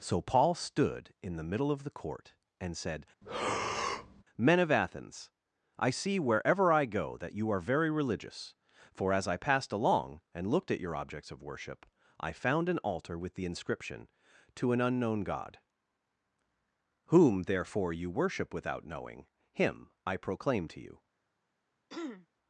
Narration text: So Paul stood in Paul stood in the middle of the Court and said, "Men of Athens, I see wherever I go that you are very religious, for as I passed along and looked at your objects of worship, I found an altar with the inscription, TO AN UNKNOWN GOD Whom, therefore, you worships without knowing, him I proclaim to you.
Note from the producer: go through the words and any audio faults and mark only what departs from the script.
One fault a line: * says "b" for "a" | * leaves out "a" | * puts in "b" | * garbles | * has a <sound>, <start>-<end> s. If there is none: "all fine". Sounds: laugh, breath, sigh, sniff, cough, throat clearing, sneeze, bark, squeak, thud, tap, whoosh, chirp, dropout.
* leaves out "Paul stood in"
* has a breath, 3.2-4.2 s
* says "worship" for "worships"
* has a throat clearing, 21.9-22.3 s